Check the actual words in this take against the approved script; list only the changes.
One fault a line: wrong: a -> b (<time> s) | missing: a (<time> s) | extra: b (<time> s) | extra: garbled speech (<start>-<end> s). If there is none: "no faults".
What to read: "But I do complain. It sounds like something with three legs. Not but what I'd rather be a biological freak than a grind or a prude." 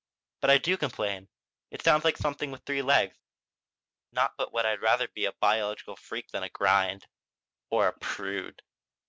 no faults